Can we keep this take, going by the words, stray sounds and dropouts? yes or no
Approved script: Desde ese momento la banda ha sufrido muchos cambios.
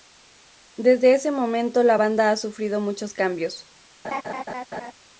no